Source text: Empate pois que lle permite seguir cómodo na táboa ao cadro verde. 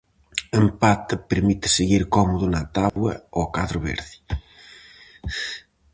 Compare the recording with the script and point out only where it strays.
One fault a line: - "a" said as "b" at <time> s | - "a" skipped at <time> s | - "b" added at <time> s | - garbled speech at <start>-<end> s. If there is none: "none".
- "pois que lle" skipped at 1.1 s